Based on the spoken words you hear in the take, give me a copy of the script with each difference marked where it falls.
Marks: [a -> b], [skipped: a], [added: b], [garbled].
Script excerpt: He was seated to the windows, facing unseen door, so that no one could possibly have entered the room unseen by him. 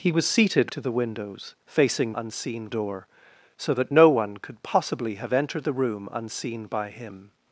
He was seated to the windows, facing unseen door, so that no one could possibly have entered the room unseen by him.